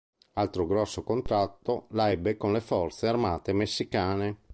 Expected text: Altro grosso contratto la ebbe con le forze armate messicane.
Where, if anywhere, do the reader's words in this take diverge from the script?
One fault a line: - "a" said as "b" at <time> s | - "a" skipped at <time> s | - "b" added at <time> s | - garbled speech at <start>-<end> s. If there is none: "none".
none